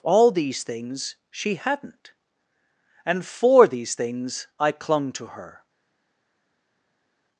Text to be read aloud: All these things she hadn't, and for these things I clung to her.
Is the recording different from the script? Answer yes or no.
no